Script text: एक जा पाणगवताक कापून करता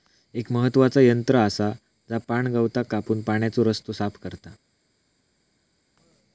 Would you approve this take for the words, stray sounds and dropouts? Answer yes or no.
no